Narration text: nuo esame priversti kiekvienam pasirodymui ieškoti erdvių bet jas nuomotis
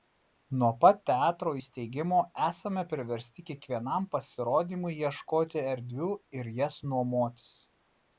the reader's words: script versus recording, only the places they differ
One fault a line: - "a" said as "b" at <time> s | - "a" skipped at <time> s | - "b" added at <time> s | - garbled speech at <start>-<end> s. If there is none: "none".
- "pat teatro įsteigimo" added at 0.8 s
- "bet" said as "ir" at 6.4 s